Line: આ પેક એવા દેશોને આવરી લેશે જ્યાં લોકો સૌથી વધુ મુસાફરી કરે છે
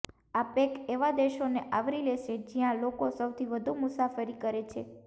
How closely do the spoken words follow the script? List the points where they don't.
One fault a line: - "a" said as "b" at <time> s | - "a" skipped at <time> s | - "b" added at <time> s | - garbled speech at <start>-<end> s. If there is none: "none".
none